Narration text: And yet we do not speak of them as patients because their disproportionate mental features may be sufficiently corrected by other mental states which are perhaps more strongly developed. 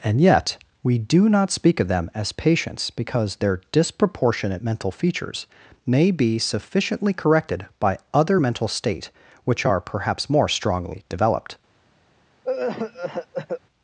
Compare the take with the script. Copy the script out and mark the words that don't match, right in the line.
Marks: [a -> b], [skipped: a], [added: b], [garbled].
And yet we do not speak of them as patients because their disproportionate mental features may be sufficiently corrected by other mental [states -> state] which are perhaps more strongly developed.